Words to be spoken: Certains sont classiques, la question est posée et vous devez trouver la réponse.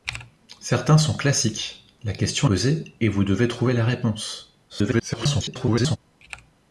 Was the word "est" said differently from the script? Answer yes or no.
yes